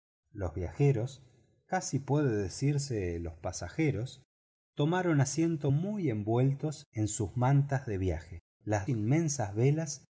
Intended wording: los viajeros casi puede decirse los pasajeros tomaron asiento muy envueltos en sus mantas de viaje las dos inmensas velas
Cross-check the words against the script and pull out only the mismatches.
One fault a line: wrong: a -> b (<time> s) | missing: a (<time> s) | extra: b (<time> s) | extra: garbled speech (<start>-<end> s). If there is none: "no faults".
missing: dos (8.9 s)